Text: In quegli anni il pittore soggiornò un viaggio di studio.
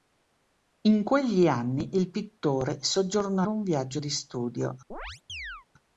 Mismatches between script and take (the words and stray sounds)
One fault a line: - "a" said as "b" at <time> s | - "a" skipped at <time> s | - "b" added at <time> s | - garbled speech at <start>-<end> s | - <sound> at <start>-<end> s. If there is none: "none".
- chirp at 4.9-5.7 s